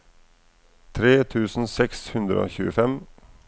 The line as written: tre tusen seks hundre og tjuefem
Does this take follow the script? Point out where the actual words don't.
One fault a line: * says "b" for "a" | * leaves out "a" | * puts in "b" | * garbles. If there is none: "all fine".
all fine